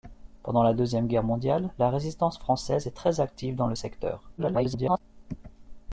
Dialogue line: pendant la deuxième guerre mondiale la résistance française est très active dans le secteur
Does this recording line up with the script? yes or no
no